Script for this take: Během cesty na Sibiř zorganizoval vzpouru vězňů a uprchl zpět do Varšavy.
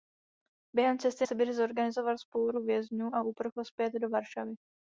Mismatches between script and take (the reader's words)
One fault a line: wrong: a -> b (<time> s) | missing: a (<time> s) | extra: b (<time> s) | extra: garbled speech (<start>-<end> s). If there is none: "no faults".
missing: na (1.2 s)